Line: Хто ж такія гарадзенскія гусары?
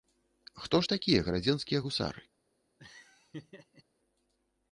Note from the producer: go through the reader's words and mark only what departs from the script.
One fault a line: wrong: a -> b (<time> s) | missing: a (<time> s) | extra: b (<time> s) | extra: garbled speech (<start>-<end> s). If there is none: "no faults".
no faults